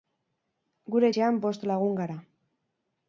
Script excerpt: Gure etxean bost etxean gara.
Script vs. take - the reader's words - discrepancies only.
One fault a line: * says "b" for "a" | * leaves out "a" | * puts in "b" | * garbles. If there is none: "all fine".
* says "lagun" for "etxean"